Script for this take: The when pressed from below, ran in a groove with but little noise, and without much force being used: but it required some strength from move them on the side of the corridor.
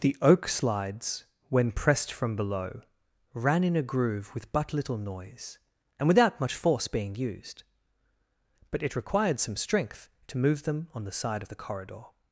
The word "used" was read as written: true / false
true